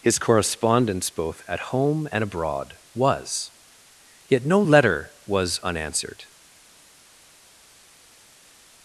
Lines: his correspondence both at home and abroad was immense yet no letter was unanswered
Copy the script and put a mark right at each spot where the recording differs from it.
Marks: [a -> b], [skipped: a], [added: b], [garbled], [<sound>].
his correspondence both at home and abroad was [skipped: immense] yet no letter was unanswered